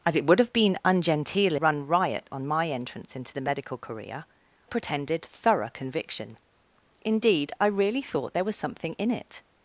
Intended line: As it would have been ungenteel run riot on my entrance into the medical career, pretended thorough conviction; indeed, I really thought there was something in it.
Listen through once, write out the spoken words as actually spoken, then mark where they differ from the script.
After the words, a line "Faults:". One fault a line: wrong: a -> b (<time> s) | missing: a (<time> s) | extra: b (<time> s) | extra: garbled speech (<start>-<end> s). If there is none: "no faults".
As it would have been ungenteel run riot on my entrance into the medical career, pretended thorough conviction; indeed, I really thought there was something in it.
Faults:
no faults